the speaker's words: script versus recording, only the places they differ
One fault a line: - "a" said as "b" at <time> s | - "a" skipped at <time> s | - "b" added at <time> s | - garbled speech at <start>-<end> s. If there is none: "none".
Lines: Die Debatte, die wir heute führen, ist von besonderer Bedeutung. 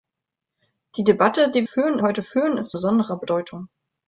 - "wir" said as "führen" at 1.6 s
- "von" skipped at 2.7 s